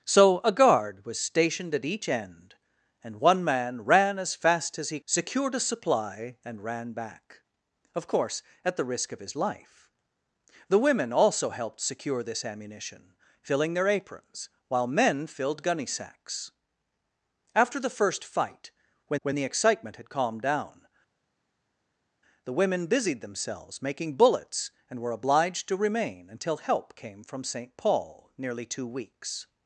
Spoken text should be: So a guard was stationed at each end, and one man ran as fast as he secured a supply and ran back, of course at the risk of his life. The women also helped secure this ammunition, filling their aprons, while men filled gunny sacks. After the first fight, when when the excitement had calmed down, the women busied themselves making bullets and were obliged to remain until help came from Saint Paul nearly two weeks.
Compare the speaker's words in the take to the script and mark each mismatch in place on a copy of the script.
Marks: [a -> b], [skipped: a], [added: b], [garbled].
So a guard was stationed at each end, and one man ran as fast as he secured a supply and ran back, of course at the risk of his life. The women also helped secure this ammunition, filling their aprons, while men filled gunny sacks. After the first fight, when when the excitement had calmed down, the women busied themselves making bullets and were obliged to remain until help came from Saint Paul nearly two weeks.